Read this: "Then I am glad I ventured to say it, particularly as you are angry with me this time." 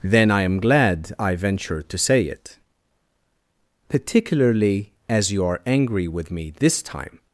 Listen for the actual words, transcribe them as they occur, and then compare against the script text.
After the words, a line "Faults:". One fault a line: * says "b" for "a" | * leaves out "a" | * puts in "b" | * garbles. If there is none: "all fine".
"Then I am glad I ventured to say it, particularly as you are angry with me this time."
Faults:
all fine